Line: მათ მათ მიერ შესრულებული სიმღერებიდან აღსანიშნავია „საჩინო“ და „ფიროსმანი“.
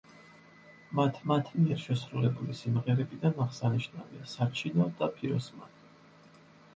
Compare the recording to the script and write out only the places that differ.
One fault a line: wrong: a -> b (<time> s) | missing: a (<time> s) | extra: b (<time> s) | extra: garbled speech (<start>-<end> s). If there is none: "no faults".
no faults